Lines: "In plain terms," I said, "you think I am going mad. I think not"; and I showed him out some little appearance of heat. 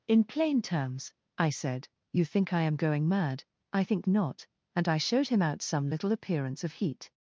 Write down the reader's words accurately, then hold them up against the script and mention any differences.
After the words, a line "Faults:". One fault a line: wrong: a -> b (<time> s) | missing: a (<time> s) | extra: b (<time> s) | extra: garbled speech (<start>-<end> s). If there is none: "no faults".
"In plain terms," I said, "you think I am going mad. I think not"; and I showed him out some little appearance of heat.
Faults:
no faults